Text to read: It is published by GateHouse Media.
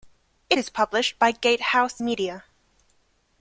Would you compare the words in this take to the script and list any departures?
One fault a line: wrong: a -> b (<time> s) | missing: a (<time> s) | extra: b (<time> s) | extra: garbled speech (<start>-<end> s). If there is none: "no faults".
no faults